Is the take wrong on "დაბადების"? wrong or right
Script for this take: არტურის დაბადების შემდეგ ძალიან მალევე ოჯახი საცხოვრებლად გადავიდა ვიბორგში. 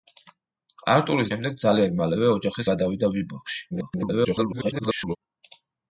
wrong